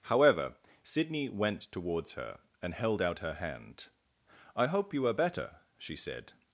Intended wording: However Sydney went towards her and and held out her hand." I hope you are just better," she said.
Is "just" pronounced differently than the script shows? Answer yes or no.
yes